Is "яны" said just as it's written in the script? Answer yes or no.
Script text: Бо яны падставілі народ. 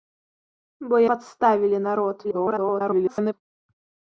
no